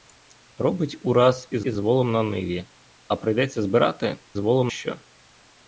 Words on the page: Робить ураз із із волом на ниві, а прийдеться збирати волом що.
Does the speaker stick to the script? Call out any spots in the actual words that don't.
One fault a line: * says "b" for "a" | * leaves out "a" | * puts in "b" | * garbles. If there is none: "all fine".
all fine